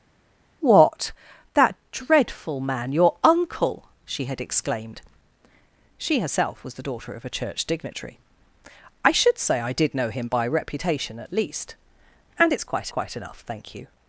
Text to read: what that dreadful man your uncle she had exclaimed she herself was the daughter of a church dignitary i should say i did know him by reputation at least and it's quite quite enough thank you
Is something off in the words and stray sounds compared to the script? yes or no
no